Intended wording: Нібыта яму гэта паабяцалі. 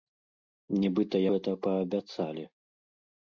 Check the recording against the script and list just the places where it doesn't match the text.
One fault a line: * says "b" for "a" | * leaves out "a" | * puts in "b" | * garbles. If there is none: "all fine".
* leaves out "яму"